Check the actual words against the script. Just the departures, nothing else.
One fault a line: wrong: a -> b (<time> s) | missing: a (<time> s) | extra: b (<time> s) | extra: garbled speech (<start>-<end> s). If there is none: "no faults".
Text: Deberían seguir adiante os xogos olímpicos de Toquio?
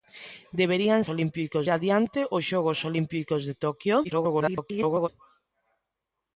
wrong: seguir -> olímpicos (1.1 s)
extra: garbled speech (4.0-5.1 s)